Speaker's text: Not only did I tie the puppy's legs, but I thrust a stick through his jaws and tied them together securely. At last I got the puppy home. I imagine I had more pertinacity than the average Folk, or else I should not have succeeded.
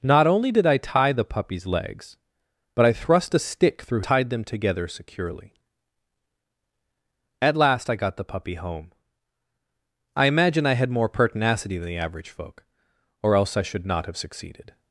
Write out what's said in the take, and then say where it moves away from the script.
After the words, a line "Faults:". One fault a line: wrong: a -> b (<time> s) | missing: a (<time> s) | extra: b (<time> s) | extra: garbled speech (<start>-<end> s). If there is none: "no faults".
Not only did I tie the puppy's legs, but I thrust a stick through tied them together securely. At last I got the puppy home. I imagine I had more pertinacity than the average Folk, or else I should not have succeeded.
Faults:
missing: his jaws and (4.0 s)